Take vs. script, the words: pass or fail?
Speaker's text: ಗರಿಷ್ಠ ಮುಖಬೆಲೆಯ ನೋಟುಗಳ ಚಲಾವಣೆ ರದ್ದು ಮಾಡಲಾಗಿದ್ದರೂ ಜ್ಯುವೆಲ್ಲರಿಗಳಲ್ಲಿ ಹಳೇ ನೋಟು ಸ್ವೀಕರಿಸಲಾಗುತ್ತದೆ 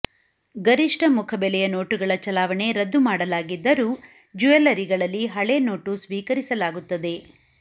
pass